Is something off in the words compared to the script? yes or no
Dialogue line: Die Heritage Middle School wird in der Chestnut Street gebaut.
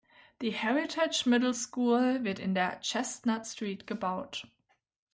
no